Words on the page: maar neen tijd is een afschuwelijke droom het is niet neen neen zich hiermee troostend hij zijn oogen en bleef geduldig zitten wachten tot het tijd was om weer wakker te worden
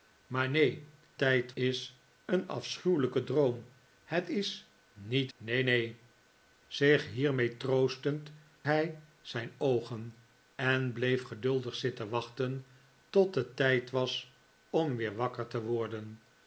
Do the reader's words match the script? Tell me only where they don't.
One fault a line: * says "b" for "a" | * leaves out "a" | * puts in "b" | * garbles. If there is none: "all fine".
all fine